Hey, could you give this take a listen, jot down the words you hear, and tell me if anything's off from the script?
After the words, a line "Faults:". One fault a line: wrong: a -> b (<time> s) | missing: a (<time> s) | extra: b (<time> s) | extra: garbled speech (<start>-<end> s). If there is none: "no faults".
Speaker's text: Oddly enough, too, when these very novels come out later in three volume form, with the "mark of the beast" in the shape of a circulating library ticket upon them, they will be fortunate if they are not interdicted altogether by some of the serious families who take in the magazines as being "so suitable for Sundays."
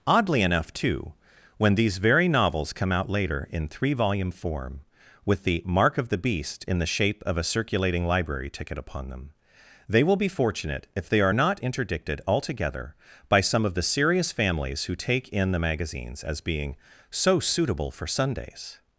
Oddly enough, too, when these very novels come out later in three volume form, with the "mark of the beast" in the shape of a circulating library ticket upon them, they will be fortunate if they are not interdicted altogether by some of the serious families who take in the magazines as being "so suitable for Sundays."
Faults:
no faults